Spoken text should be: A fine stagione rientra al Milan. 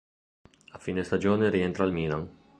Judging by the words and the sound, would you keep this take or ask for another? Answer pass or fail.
pass